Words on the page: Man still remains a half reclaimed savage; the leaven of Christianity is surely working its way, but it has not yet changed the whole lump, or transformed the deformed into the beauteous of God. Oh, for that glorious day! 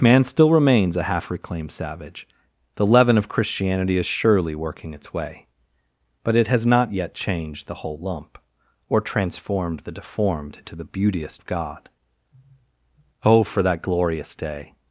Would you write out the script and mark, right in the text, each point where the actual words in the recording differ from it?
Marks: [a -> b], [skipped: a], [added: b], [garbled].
Man still remains a half reclaimed savage; the leaven of Christianity is surely working its way, but it has not yet changed the whole lump, or transformed the deformed into the beauteous of God. Oh, for that glorious day!